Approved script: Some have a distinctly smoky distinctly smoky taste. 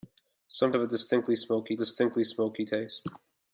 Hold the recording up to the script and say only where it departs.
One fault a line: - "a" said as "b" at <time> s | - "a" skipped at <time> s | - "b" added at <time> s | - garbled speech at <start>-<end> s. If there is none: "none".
none